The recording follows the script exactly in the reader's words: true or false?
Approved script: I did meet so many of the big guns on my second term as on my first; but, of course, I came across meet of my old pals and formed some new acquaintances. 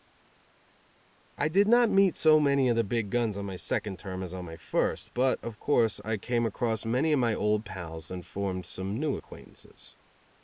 false